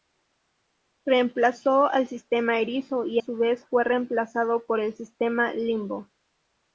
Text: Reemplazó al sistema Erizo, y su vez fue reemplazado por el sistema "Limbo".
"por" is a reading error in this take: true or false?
false